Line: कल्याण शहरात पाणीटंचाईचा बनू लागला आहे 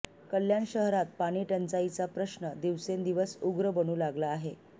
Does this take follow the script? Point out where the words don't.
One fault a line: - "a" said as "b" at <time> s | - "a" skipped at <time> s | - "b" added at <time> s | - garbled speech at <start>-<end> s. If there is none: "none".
- "प्रश्न दिवसेंदिवस उग्र" added at 2.1 s